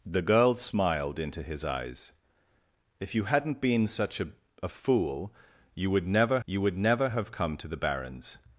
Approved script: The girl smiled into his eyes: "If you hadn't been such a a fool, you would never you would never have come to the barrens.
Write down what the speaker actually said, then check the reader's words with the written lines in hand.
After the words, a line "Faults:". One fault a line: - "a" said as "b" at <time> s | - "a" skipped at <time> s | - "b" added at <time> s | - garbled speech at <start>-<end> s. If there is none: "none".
The girl smiled into his eyes: "If you hadn't been such a a fool, you would never you would never have come to the barrens.
Faults:
none